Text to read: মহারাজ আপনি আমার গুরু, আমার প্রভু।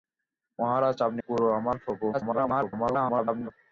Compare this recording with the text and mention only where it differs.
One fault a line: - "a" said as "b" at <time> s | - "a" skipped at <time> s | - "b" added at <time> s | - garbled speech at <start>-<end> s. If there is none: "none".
- "আমার" skipped at 1.2 s
- garbled speech at 2.1-3.5 s